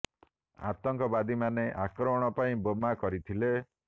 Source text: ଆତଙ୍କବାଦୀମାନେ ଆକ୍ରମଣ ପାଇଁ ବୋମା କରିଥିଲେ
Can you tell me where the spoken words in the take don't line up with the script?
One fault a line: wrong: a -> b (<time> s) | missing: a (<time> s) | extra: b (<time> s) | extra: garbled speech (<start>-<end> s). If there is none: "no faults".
no faults